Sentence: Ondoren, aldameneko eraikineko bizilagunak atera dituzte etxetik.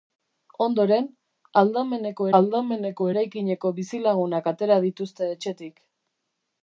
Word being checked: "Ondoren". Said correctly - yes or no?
yes